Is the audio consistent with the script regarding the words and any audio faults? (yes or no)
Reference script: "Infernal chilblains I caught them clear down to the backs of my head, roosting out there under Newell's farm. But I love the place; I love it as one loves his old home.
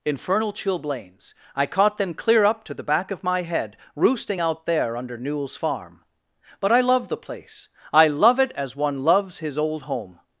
no